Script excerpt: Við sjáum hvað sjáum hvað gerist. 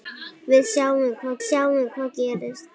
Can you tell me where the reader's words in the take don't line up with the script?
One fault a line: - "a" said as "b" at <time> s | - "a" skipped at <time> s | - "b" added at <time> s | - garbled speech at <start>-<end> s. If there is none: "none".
none